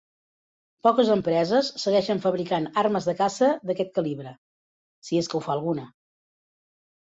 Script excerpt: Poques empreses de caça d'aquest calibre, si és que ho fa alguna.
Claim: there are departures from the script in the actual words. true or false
true